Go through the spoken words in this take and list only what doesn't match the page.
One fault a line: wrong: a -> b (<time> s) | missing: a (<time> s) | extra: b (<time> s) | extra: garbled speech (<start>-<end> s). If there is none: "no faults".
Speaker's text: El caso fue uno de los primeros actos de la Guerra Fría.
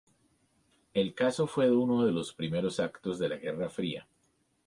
no faults